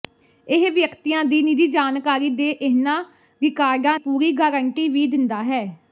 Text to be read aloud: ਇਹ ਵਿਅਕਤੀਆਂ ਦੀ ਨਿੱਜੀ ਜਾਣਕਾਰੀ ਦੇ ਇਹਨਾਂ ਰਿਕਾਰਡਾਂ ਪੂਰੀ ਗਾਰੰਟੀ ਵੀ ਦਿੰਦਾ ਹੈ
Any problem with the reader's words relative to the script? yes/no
no